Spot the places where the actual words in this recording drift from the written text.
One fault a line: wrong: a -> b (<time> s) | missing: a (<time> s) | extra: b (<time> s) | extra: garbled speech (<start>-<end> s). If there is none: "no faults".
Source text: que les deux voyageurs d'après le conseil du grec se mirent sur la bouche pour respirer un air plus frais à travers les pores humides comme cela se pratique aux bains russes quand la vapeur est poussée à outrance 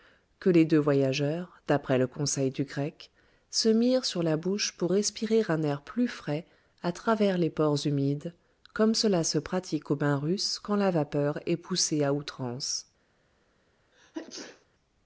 no faults